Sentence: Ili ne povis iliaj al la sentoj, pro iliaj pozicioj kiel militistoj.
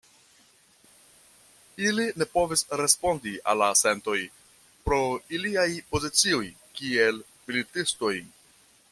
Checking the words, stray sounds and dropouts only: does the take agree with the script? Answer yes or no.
no